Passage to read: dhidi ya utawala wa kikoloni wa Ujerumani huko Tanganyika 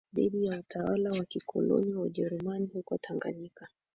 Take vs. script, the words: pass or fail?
pass